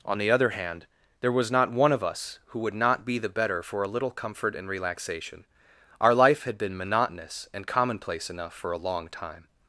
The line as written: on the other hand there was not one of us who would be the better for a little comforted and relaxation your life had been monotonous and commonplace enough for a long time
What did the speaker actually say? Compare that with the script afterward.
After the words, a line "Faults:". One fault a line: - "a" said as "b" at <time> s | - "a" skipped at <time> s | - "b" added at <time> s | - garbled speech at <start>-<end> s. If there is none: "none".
on the other hand there was not one of us who would not be the better for a little comfort and relaxation our life had been monotonous and commonplace enough for a long time
Faults:
- "not" added at 2.7 s
- "comforted" said as "comfort" at 4.1 s
- "your" said as "our" at 6.0 s